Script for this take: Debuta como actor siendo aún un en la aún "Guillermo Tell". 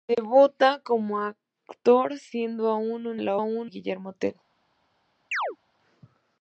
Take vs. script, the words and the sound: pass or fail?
fail